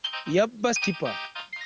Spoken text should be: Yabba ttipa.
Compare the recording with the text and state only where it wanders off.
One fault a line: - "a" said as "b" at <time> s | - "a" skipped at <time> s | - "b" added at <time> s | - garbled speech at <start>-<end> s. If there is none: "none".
none